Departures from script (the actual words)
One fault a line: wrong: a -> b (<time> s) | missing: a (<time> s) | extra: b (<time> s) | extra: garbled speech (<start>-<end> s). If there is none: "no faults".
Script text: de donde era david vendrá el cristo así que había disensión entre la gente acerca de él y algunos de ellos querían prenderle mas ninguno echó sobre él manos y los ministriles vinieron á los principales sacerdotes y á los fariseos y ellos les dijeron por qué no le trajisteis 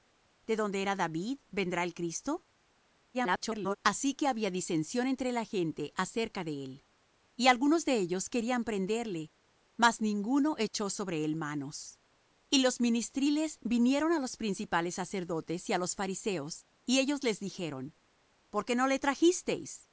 extra: garbled speech (3.1-3.8 s)